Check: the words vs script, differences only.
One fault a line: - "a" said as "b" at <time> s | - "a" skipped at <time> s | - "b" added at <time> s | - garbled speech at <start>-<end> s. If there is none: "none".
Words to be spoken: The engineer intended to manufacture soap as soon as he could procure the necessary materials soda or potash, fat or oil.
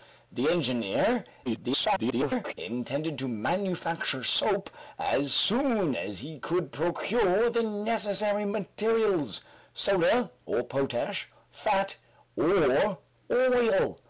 - garbled speech at 1.4-2.5 s